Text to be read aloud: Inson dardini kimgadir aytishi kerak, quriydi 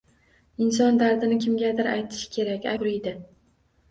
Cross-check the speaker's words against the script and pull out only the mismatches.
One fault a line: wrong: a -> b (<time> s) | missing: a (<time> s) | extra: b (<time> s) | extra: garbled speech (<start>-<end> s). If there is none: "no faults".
no faults